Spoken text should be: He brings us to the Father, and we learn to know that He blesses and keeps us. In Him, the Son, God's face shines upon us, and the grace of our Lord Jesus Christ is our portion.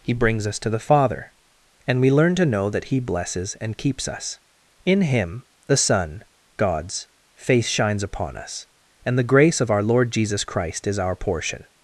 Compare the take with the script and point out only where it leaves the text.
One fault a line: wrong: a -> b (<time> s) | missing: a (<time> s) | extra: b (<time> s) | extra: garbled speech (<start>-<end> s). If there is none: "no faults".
no faults